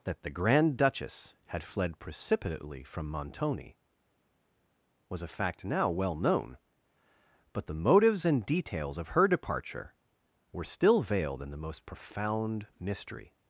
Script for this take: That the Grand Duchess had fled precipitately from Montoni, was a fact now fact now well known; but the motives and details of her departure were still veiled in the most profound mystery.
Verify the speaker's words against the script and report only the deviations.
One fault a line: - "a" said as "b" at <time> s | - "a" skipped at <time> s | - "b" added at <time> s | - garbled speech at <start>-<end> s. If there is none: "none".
- "fact now" skipped at 5.9 s